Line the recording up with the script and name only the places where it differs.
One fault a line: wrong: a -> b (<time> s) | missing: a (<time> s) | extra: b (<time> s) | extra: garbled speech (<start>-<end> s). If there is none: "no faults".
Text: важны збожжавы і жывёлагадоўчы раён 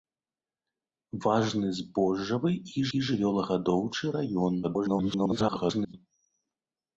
extra: і (2.9 s)
extra: garbled speech (4.6-5.9 s)